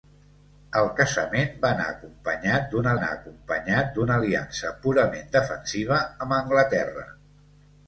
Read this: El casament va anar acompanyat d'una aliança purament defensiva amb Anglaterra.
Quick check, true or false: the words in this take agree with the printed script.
false